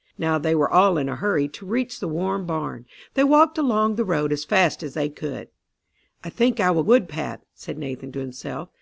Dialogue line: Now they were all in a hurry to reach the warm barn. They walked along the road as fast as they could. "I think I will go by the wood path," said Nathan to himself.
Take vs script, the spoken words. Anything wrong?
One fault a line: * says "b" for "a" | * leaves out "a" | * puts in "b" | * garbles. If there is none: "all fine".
* leaves out "go by the"